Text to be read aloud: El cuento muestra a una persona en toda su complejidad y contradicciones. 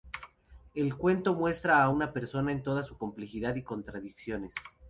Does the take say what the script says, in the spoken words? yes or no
yes